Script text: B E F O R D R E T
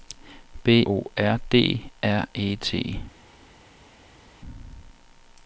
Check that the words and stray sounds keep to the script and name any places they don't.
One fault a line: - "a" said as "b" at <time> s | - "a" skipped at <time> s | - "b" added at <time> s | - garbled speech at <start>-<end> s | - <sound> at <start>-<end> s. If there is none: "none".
- "E F" skipped at 0.8 s